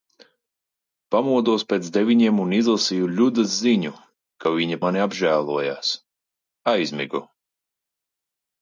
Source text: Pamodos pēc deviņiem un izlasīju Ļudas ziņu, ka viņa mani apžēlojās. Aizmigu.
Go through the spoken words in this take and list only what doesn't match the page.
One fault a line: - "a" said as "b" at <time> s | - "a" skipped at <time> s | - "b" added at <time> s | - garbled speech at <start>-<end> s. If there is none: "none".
none